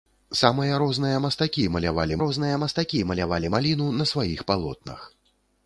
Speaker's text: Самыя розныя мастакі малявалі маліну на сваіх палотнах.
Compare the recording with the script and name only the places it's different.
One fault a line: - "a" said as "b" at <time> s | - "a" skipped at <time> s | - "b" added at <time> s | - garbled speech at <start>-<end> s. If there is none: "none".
- "розныя мастакі малявалі" added at 2.2 s